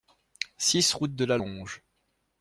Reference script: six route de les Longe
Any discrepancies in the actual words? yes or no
yes